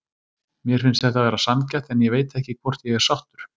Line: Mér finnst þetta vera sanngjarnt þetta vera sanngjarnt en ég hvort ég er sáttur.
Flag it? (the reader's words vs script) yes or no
yes